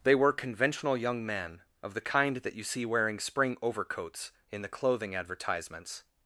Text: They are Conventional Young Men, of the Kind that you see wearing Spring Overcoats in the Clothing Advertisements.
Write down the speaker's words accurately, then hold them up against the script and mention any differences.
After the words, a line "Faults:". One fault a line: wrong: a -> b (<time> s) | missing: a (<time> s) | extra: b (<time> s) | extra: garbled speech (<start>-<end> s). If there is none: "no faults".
They were Conventional Young Men, of the Kind that you see wearing Spring Overcoats in the Clothing Advertisements.
Faults:
wrong: are -> were (0.1 s)